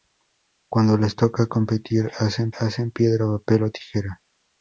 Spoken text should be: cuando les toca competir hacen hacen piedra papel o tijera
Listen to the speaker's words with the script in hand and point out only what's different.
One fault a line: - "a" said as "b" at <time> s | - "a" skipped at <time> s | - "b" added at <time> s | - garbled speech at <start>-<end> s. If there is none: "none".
none